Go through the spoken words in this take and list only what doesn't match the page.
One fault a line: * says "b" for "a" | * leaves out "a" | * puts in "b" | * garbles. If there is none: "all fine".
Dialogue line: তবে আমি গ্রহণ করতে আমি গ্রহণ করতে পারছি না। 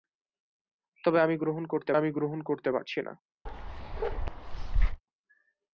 all fine